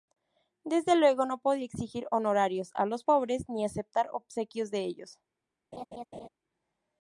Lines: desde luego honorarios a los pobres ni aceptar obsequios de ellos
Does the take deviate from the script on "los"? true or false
false